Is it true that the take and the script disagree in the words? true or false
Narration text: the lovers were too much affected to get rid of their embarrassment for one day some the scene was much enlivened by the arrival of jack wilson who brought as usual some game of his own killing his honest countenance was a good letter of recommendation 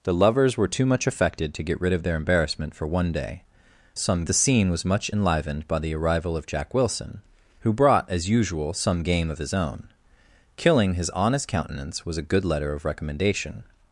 false